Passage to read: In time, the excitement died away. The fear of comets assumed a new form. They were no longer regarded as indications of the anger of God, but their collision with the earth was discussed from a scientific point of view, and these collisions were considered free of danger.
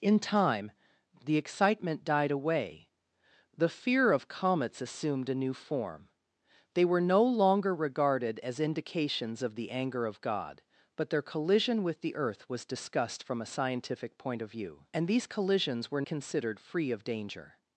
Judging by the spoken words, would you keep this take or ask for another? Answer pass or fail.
pass